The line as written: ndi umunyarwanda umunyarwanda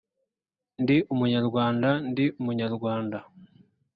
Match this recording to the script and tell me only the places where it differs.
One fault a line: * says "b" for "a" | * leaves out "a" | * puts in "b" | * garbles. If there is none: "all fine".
* puts in "ndi"